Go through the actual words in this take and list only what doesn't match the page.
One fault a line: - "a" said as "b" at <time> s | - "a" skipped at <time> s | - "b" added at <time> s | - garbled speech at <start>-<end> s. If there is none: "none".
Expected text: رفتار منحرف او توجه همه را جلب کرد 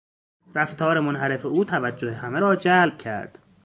none